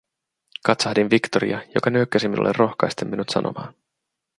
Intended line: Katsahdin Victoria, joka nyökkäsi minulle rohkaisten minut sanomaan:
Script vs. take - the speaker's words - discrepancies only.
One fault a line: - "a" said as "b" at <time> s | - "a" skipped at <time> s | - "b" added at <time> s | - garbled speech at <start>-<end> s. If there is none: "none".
none